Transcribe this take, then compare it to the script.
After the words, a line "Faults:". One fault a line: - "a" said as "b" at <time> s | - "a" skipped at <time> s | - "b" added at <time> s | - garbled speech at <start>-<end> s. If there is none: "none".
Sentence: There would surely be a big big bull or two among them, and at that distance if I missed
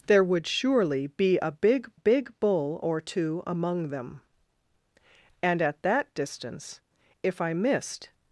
There would surely be a big big bull or two among them, and at that distance if I missed
Faults:
none